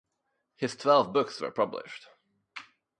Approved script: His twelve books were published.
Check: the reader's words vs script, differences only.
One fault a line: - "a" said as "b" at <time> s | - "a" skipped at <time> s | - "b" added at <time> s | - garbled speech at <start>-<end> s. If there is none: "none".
none